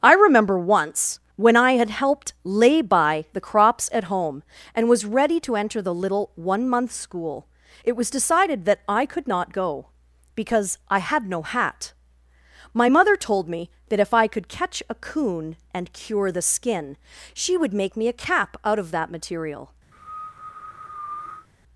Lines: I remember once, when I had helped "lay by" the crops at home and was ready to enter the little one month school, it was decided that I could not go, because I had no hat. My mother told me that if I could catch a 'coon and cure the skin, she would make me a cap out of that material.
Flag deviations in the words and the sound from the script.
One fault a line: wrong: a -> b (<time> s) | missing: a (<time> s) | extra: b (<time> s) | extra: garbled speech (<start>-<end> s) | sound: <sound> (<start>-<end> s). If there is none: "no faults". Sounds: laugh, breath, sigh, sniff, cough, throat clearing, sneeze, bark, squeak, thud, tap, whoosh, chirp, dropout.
sound: cough (19.9-21.5 s)